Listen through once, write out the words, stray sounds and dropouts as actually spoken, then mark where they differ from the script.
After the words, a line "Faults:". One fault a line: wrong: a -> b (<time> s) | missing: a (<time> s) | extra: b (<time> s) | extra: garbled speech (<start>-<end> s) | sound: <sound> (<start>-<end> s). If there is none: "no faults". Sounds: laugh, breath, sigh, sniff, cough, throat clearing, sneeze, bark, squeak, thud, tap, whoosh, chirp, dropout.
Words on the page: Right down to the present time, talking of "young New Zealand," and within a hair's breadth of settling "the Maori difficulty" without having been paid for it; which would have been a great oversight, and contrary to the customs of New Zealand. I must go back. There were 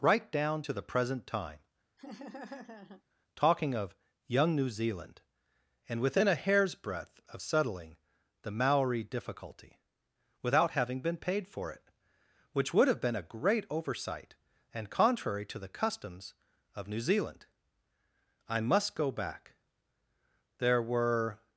Right down to the present time, talking of "young New Zealand," and within a hair's breadth of settling "the Maori difficulty" without having been paid for it; which would have been a great oversight, and contrary to the customs of New Zealand. I must go back. There were
Faults:
sound: laugh (2.0-3.0 s)